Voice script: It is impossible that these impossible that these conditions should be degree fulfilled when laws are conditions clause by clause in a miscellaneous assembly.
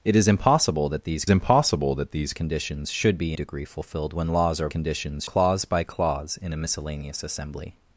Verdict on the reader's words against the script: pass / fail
pass